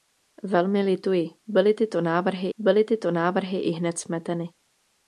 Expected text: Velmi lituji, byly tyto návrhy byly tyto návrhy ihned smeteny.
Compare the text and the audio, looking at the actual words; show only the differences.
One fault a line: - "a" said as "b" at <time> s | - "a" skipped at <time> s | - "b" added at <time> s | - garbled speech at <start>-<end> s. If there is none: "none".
none